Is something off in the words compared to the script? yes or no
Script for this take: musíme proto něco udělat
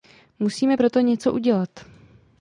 no